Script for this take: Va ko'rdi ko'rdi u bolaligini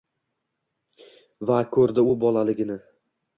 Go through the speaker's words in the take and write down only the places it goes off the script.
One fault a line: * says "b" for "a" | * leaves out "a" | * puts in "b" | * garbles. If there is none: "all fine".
* leaves out "ko'rdi"